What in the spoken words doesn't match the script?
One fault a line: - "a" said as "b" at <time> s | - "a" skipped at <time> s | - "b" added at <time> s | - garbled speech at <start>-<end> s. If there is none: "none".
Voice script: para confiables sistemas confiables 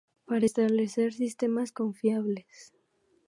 - "confiables" said as "establecer" at 0.4 s